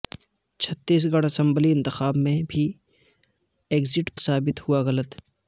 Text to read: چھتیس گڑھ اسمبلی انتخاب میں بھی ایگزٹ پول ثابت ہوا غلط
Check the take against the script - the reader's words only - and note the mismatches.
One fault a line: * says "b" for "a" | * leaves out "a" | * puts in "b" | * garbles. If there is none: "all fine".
* leaves out "پول"